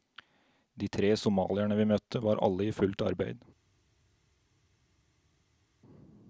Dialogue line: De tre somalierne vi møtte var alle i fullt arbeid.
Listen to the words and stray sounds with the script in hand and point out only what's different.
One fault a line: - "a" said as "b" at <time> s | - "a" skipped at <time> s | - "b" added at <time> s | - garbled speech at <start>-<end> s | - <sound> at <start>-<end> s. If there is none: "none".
none